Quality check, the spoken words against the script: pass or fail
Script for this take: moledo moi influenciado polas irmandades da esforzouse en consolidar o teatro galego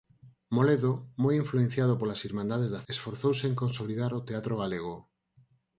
pass